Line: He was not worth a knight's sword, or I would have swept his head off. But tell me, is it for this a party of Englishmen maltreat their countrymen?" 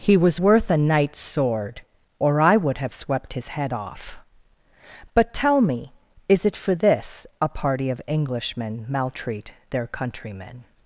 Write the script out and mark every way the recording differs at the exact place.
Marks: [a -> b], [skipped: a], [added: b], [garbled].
He was [skipped: not] worth a knight's sword, or I would have swept his head off. But tell me, is it for this a party of Englishmen maltreat their countrymen?"